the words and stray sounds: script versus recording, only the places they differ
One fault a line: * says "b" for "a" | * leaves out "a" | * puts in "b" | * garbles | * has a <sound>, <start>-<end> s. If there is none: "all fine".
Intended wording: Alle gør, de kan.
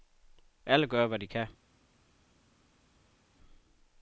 * puts in "hvad"